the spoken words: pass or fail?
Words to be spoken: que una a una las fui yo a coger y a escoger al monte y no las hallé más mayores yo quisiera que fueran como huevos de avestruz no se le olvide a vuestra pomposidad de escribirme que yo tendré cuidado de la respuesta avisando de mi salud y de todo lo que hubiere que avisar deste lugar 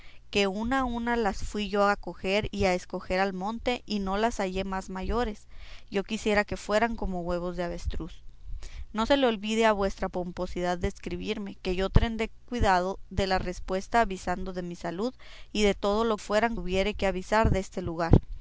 fail